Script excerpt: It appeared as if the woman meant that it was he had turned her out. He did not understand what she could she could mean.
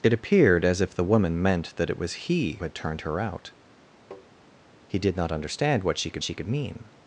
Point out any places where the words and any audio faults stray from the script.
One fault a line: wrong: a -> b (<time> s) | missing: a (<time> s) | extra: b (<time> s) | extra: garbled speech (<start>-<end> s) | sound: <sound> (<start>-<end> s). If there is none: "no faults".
sound: tap (4.1-4.3 s)